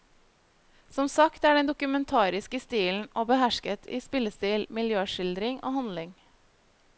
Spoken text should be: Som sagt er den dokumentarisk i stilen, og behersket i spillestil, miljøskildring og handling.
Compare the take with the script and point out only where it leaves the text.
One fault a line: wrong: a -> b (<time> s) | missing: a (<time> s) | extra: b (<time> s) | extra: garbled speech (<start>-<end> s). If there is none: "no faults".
no faults